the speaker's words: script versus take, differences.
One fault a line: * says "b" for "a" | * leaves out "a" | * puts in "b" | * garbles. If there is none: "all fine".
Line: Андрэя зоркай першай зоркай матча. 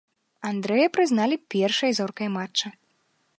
* says "прызналі" for "зоркай"